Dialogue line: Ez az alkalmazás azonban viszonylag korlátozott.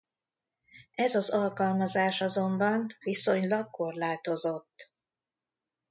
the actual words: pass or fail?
pass